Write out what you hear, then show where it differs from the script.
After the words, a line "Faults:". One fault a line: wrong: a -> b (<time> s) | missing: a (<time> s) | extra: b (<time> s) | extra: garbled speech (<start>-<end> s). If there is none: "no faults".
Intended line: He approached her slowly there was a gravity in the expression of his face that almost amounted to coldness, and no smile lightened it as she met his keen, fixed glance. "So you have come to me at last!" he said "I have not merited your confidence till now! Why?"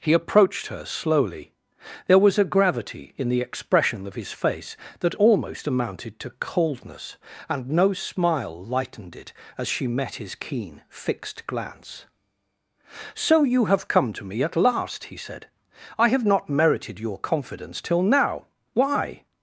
He approached her slowly there was a gravity in the expression of his face that almost amounted to coldness, and no smile lightened it as she met his keen, fixed glance. "So you have come to me at last!" he said "I have not merited your confidence till now! Why?"
Faults:
no faults